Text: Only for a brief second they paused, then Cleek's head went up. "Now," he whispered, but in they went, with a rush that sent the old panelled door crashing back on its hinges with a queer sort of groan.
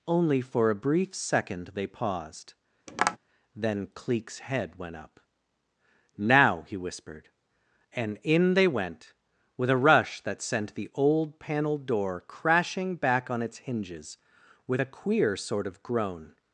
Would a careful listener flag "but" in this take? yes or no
yes